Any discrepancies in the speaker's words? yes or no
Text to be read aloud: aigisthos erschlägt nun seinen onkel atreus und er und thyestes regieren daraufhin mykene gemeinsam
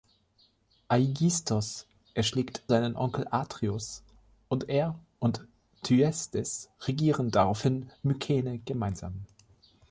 yes